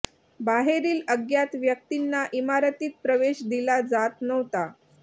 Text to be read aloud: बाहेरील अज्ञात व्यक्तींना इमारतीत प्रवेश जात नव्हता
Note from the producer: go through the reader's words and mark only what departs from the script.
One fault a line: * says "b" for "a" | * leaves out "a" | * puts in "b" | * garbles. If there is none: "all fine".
* puts in "दिला"